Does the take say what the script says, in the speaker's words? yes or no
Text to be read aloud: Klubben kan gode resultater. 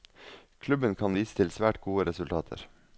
no